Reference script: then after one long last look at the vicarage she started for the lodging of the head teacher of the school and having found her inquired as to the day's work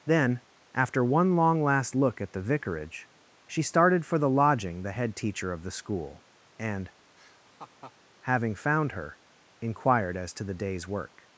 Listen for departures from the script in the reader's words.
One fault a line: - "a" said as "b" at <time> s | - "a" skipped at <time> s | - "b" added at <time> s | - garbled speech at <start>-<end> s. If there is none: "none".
- "of" skipped at 4.8 s